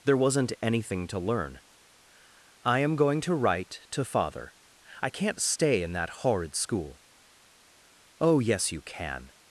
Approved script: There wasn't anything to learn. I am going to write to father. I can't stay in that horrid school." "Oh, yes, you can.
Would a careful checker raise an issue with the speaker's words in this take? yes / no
no